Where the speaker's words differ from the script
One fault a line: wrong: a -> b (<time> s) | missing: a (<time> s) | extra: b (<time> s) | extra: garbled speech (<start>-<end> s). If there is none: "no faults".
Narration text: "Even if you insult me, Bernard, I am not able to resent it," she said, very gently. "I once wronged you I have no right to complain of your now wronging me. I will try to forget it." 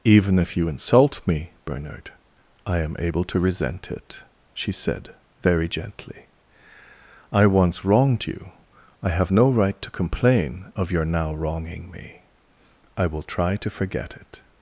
missing: not (3.0 s)